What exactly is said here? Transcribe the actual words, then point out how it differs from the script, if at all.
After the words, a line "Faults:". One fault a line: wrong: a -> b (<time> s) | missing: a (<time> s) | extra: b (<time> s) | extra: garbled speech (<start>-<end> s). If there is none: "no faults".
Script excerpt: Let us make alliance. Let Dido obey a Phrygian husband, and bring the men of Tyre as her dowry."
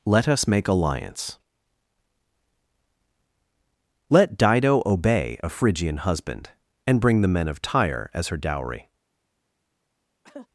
Let us make alliance. Let Dido obey a Phrygian husband, and bring the men of Tyre as her dowry."
Faults:
no faults